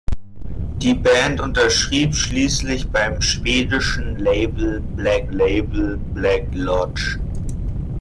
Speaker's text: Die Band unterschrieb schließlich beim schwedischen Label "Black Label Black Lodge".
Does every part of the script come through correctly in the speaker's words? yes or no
yes